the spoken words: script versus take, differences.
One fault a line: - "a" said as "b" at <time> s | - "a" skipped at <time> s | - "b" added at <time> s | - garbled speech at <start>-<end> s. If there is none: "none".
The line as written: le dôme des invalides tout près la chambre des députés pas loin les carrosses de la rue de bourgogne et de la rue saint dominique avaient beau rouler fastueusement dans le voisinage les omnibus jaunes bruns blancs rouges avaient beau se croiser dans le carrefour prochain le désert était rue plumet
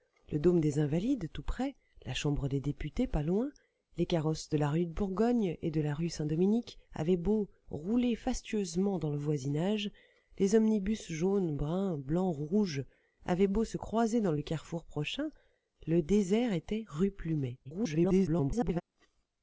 - garbled speech at 17.6-18.8 s